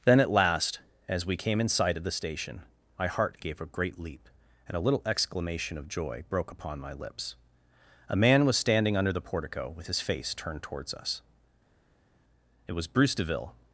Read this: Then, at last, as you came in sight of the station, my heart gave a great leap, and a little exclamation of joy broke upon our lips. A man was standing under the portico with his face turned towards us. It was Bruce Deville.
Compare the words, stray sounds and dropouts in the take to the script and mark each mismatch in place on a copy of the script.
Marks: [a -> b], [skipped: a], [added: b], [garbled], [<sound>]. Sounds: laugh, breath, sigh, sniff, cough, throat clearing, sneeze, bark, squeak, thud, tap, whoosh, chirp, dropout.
Then, at last, as [you -> we] came in sight of the station, my heart gave a great leap, and a little exclamation of joy broke upon [our -> my] lips. A man was standing under the portico with his face turned towards us. It was Bruce Deville.